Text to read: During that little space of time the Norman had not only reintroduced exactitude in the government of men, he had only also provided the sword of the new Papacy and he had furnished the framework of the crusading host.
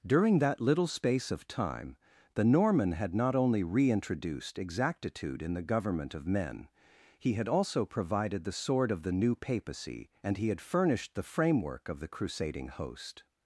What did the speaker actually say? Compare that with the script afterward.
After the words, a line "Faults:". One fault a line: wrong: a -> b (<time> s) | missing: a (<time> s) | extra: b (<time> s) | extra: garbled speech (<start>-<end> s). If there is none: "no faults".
During that little space of time the Norman had not only reintroduced exactitude in the government of men, he had also provided the sword of the new Papacy and he had furnished the framework of the crusading host.
Faults:
missing: only (7.5 s)